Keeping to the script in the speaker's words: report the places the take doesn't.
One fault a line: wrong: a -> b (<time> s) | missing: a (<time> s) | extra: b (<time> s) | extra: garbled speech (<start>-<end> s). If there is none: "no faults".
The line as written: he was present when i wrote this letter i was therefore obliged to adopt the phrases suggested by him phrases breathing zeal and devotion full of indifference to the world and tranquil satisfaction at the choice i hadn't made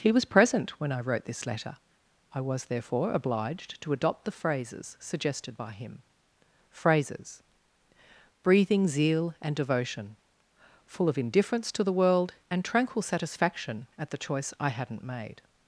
no faults